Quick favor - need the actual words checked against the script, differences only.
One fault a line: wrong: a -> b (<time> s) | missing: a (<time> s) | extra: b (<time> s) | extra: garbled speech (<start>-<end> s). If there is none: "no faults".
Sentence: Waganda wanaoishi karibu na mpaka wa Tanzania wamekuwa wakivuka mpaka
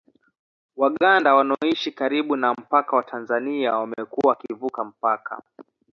no faults